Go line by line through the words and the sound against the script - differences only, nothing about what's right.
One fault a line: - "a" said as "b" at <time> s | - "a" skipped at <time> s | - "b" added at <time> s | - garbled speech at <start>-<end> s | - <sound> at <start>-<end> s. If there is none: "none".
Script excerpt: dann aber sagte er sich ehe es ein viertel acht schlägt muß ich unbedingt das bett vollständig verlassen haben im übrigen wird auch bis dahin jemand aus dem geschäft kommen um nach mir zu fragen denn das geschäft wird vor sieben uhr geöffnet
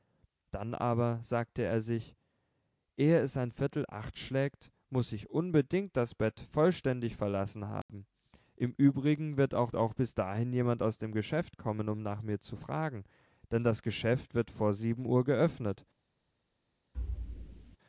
- dropout at 7.8-7.9 s
- "auch" added at 9.8 s
- thud at 16.9-17.8 s